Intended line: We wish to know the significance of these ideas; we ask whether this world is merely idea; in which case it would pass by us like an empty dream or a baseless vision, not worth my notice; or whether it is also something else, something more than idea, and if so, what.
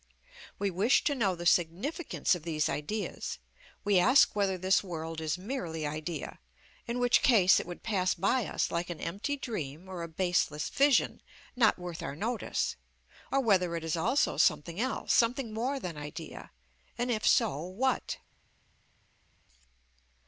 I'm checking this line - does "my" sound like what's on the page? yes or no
no